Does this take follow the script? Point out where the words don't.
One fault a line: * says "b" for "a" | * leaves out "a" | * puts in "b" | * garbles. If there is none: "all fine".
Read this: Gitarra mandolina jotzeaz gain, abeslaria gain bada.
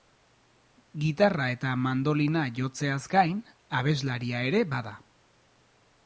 * puts in "eta"
* says "ere" for "gain"